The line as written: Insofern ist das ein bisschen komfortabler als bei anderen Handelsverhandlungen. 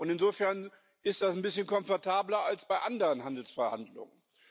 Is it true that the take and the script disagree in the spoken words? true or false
false